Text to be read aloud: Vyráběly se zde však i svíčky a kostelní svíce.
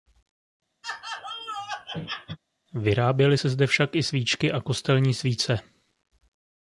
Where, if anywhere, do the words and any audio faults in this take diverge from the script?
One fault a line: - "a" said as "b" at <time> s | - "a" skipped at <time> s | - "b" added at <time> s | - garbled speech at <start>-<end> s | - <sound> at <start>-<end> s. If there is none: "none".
- laugh at 0.8-2.4 s